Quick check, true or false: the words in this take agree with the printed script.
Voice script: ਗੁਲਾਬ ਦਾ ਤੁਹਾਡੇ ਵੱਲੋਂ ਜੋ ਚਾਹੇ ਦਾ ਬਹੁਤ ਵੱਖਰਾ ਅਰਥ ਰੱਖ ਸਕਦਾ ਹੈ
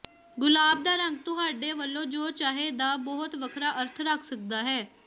false